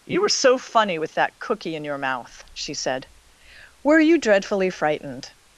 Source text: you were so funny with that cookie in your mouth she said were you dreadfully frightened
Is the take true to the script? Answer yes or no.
yes